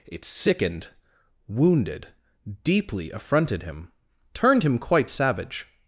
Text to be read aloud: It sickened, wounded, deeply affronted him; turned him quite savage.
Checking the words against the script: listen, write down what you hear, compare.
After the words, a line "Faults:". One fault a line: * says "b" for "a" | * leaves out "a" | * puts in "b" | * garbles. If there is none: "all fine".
It sickened, wounded, deeply affronted him; turned him quite savage.
Faults:
all fine